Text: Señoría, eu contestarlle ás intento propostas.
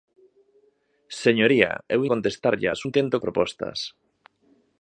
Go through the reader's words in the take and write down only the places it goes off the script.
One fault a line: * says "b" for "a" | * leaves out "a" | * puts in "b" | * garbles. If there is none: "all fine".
all fine